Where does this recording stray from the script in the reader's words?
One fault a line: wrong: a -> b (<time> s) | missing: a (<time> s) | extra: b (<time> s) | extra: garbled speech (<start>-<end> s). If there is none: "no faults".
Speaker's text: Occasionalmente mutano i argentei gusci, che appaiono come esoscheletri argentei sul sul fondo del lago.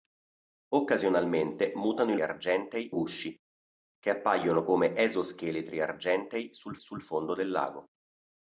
no faults